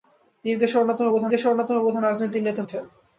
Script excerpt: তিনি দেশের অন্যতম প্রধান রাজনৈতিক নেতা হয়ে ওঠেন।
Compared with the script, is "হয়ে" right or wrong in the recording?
wrong